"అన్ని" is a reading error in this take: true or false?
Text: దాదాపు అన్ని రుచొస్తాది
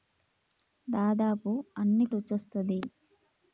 false